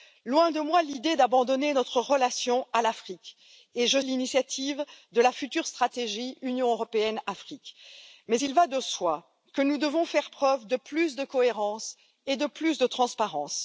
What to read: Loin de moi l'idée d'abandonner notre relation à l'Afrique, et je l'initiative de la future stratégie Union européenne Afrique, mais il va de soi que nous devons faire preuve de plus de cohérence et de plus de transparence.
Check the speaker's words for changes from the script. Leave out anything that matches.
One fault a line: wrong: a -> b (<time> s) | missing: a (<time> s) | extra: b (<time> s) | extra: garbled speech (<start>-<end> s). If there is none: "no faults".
no faults